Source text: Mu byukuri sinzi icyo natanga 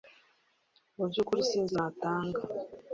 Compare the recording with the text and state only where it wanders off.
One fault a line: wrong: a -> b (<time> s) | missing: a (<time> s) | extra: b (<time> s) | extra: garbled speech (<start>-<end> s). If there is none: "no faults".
missing: icyo (1.7 s)